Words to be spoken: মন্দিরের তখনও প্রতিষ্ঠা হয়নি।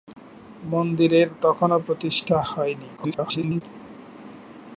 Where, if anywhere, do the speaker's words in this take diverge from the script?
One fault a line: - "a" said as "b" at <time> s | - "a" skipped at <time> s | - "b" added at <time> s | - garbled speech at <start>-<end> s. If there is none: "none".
- garbled speech at 3.0-3.6 s